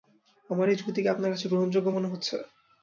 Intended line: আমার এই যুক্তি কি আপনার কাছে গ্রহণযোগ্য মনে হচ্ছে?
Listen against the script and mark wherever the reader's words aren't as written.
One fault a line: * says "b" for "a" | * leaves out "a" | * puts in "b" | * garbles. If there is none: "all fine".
all fine